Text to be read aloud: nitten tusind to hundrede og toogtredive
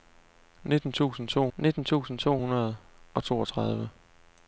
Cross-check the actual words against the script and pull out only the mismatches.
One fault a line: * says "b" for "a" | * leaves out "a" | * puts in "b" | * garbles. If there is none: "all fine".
* puts in "nitten tusind to"